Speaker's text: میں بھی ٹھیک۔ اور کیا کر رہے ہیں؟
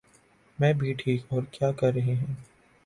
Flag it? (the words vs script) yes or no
no